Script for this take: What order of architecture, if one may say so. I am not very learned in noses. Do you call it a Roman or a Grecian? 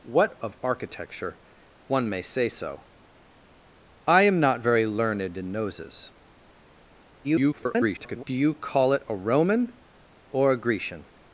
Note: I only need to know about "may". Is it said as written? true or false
true